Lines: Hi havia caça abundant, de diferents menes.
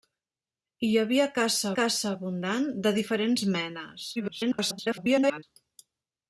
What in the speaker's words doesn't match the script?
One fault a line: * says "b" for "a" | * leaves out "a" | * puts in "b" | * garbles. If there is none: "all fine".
* puts in "caça"
* garbles